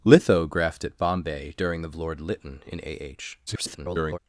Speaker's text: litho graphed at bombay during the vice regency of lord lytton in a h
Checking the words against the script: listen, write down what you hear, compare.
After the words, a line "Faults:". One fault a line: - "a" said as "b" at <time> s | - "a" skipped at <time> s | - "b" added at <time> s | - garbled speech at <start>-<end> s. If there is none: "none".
litho graphed at bombay during the lord lytton in a h [garbled]
Faults:
- "vice regency of" skipped at 1.9 s
- garbled speech at 3.5-4.2 s